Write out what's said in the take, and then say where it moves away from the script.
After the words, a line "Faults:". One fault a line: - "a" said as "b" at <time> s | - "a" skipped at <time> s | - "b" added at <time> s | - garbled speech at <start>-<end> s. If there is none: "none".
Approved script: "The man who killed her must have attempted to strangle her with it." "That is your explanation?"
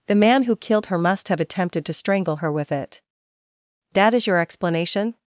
"The man who killed her must have attempted to strangle her with it." "That is your explanation?"
Faults:
none